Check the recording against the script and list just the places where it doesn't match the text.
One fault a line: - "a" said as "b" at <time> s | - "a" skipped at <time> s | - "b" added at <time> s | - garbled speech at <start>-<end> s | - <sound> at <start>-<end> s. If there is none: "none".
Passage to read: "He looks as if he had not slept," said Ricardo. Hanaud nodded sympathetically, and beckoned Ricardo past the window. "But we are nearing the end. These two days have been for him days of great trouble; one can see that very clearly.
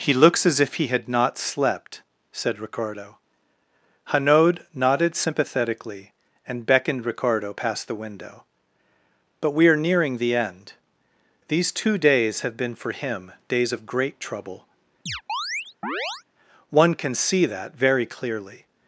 - chirp at 15.1-16.2 s